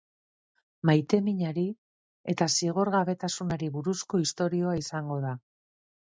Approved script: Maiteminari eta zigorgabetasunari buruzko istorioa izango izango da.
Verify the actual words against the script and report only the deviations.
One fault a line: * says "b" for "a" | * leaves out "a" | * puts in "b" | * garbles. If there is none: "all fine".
* leaves out "izango"